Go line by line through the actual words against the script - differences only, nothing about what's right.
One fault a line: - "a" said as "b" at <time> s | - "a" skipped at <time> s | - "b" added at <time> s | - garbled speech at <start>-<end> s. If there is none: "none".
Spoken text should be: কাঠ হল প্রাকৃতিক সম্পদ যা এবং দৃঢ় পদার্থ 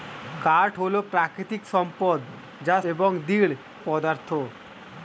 none